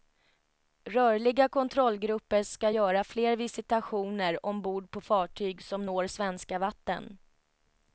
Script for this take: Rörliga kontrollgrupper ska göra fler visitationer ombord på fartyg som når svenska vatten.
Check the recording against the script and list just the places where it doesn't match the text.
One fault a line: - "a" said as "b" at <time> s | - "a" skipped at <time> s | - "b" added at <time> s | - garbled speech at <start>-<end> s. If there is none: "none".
none